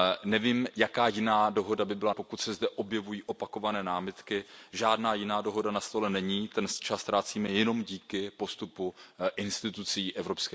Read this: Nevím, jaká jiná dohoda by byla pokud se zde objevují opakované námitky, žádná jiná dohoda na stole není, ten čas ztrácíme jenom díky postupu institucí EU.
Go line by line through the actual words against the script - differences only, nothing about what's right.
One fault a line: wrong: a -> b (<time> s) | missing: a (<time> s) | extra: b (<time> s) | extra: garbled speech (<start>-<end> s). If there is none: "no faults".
no faults